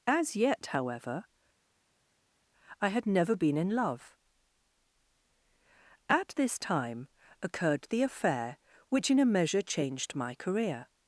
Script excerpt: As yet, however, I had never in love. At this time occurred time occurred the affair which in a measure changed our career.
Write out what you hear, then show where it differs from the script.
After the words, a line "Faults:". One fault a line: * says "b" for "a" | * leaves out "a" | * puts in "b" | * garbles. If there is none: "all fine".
As yet, however, I had never been in love. At this time occurred the affair which in a measure changed my career.
Faults:
* puts in "been"
* leaves out "time occurred"
* says "my" for "our"